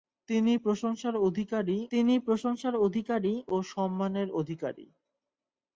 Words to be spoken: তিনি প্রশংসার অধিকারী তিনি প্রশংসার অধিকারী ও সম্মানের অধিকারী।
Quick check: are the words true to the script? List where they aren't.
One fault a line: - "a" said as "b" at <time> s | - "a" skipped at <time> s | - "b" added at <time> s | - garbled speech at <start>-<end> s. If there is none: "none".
none